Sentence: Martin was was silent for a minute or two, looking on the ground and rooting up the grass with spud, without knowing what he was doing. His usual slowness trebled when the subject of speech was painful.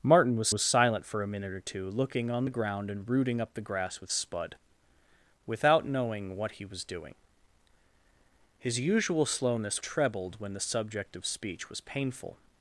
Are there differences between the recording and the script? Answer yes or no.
no